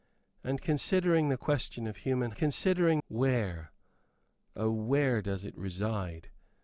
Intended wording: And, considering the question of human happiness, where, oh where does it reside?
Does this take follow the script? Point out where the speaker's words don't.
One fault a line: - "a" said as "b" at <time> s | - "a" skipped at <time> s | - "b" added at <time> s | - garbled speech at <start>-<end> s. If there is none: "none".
- "happiness" said as "considering" at 2.3 s